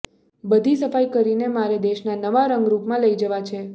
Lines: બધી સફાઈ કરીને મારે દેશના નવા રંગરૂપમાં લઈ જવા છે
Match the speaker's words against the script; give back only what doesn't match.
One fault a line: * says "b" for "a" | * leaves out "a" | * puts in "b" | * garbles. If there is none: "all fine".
all fine